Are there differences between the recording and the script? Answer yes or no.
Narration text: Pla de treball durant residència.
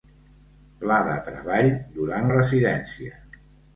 no